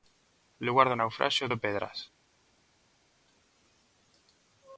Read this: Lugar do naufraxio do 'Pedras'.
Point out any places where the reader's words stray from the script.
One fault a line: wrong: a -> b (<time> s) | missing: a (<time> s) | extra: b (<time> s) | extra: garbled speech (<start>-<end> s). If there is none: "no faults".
no faults